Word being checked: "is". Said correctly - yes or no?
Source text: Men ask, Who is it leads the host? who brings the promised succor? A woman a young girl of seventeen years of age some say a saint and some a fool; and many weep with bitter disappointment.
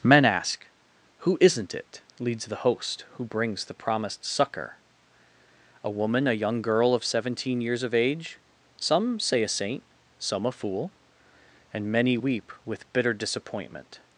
no